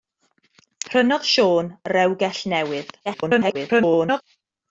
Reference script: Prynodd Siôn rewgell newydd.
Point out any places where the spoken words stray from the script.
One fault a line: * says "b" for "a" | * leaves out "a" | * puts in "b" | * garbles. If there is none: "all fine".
* garbles